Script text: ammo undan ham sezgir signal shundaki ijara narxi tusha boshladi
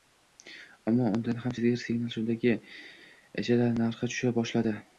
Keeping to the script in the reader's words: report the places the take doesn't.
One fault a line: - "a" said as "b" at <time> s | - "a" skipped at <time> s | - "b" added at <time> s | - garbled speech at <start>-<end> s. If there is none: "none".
none